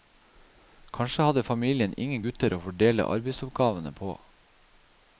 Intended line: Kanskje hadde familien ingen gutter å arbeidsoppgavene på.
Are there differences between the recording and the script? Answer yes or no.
yes